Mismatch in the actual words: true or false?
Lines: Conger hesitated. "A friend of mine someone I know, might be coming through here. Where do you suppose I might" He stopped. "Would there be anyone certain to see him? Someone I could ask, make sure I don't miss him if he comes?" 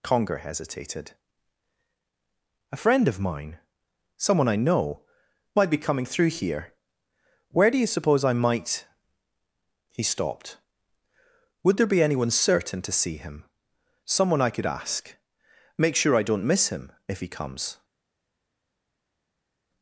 false